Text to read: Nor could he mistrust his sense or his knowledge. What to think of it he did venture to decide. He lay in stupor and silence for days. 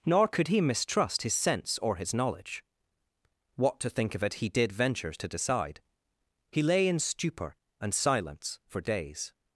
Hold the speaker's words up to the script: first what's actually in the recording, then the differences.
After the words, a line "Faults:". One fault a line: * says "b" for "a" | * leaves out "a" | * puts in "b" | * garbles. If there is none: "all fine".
Nor could he mistrust his sense or his knowledge. What to think of it he did venture to decide. He lay in stupor and silence for days.
Faults:
all fine